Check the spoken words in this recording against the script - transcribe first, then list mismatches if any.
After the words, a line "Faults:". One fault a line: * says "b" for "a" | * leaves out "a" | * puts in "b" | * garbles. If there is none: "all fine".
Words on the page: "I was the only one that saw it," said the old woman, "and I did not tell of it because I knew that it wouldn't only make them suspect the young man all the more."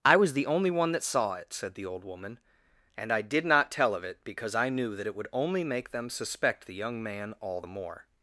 "I was the only one that saw it," said the old woman, "and I did not tell of it because I knew that it would only make them suspect the young man all the more."
Faults:
* says "would" for "wouldn't"